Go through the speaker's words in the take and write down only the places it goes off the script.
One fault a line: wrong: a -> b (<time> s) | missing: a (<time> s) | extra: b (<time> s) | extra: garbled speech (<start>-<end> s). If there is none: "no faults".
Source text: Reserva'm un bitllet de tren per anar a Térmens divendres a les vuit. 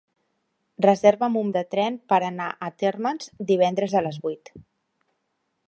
missing: bitllet (1.5 s)